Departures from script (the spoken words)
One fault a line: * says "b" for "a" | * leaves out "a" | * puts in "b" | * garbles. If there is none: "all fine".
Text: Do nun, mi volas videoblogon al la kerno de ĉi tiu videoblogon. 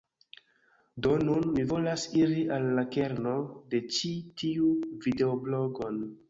* says "iri" for "videoblogon"